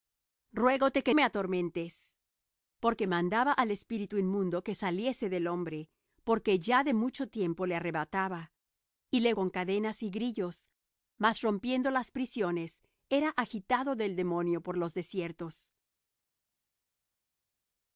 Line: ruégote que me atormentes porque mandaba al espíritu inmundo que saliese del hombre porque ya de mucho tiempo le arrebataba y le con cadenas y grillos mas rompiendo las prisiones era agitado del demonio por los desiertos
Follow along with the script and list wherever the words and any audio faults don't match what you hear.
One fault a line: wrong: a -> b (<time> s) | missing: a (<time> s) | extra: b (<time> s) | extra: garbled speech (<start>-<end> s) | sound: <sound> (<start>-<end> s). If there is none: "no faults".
no faults